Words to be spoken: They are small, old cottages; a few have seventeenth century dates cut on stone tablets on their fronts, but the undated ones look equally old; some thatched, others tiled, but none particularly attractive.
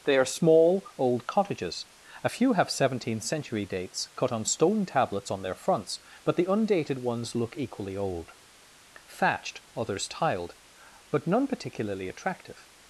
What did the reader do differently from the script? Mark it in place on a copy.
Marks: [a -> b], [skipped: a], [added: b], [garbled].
They are small, old cottages; a few have seventeenth century dates cut on stone tablets on their fronts, but the undated ones look equally old; [skipped: some] thatched, others tiled, but none particularly attractive.